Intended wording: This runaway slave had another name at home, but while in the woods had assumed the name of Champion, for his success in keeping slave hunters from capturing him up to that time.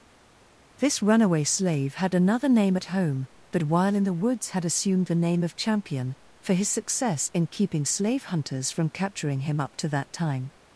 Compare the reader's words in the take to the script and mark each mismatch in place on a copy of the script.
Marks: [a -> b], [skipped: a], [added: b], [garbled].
This runaway slave had another name at home, but while in the woods had assumed the name of Champion, for his success in keeping slave hunters from capturing him up to that time.